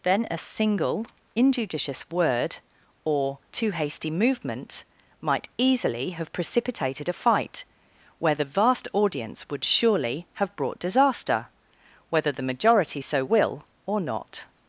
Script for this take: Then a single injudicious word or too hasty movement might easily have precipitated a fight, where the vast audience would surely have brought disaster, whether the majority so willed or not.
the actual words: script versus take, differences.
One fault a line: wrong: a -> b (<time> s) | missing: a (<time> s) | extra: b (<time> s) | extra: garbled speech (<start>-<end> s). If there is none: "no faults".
wrong: willed -> will (13.2 s)